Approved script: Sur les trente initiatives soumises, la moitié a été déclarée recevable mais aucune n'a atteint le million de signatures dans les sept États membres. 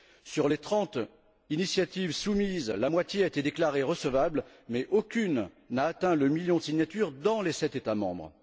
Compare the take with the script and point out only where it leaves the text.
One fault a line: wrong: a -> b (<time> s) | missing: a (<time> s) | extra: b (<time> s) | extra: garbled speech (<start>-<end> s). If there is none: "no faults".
no faults